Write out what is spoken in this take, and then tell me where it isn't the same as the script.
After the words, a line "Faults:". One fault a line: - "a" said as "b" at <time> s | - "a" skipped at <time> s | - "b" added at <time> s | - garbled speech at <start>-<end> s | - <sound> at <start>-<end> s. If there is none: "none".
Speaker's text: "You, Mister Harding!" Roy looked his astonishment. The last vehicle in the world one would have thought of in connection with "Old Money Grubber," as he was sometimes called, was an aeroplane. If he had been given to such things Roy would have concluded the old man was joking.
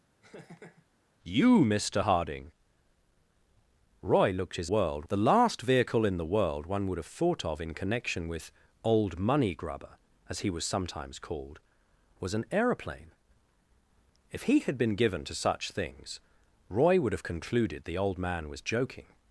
"You, Mister Harding!" Roy looked his world. The last vehicle in the world one would have thought of in connection with "Old Money Grubber," as he was sometimes called, was an aeroplane. If he had been given to such things Roy would have concluded the old man was joking.
Faults:
- laugh at 0.2-0.9 s
- "astonishment" said as "world" at 4.6 s